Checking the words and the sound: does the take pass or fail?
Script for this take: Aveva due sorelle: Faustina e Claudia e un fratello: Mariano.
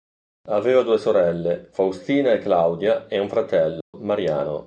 fail